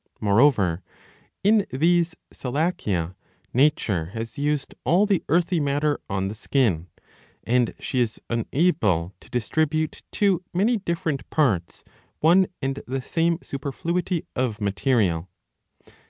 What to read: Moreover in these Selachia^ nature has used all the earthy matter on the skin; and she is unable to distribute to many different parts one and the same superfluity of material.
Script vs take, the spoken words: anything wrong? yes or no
no